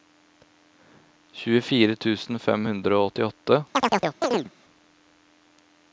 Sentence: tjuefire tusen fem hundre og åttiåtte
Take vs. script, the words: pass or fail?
pass